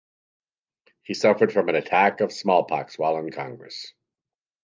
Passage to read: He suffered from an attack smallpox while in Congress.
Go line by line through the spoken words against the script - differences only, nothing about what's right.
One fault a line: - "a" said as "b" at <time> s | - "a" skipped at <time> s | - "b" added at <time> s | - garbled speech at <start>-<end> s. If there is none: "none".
- "of" added at 2.2 s